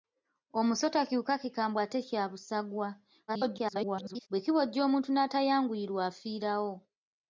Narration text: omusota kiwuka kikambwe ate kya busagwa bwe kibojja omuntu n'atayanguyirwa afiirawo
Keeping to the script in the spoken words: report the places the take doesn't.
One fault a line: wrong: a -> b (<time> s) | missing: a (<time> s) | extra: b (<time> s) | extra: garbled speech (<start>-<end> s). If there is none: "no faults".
extra: garbled speech (3.3-4.3 s)